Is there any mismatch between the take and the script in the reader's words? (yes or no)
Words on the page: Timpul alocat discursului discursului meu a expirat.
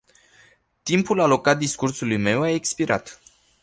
yes